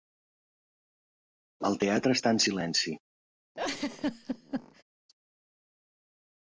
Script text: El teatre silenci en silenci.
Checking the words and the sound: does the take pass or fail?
fail